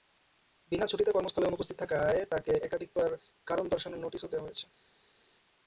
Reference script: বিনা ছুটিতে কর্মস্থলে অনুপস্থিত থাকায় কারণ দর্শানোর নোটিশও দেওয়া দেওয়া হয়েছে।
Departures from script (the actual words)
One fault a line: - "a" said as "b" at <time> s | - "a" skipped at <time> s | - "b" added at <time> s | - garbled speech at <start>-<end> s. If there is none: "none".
- "তাঁকে একাধিকবার" added at 2.3 s
- "দেওয়া" skipped at 4.5 s